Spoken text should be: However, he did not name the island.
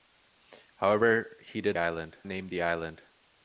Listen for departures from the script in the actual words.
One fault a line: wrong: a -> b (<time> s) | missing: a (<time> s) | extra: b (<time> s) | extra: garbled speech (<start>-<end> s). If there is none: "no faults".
wrong: not -> island (1.8 s)